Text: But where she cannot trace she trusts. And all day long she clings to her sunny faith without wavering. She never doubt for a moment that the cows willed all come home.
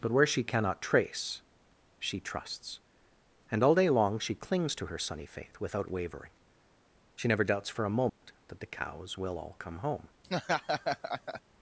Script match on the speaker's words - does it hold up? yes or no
no